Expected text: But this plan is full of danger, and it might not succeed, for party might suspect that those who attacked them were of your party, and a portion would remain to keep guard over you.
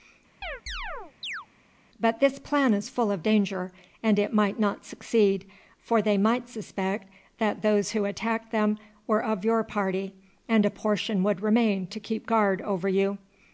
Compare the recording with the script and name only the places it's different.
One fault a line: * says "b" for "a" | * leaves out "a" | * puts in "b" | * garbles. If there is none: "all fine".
* says "they" for "party"